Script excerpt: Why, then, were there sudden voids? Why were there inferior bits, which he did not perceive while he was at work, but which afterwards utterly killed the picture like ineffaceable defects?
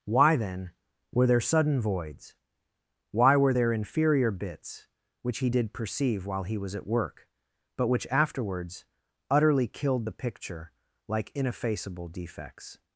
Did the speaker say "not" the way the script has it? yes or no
no